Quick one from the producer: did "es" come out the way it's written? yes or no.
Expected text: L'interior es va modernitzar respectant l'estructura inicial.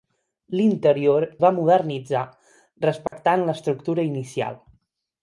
no